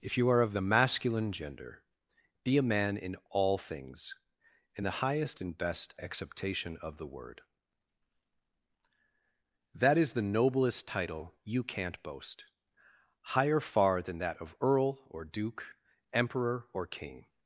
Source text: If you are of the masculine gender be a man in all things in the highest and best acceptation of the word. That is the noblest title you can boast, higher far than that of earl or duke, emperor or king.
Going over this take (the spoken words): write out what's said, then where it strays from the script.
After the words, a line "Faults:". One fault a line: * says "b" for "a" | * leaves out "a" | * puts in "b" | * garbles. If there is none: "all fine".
If you are of the masculine gender be a man in all things in the highest and best acceptation of the word. That is the noblest title you can't boast, higher far than that of earl or duke, emperor or king.
Faults:
* says "can't" for "can"